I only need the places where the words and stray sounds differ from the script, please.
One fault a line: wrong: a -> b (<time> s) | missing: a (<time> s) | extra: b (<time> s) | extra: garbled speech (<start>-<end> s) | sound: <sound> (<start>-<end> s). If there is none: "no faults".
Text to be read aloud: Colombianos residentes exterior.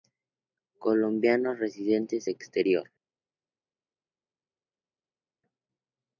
no faults